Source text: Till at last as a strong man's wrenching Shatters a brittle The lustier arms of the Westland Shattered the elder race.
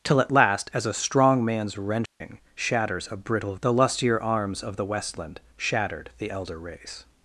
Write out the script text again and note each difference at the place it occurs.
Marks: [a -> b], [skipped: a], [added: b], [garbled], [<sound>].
Till at last as a strong man's wrenching [dropout] Shatters a brittle The lustier arms of the Westland Shattered the elder race.